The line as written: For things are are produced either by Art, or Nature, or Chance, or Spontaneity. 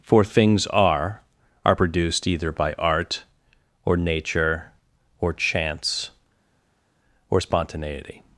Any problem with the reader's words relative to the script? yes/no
no